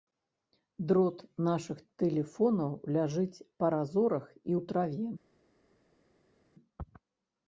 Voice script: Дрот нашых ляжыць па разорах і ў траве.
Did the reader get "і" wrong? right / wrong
right